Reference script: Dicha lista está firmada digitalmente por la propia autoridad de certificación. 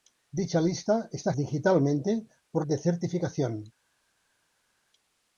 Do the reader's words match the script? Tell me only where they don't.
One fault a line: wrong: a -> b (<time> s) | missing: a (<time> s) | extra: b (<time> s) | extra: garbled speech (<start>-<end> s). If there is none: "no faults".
missing: firmada (1.3 s)
missing: la propia autoridad (2.7 s)